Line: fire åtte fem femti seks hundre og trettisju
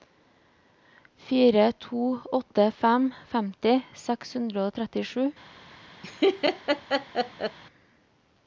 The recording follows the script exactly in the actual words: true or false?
false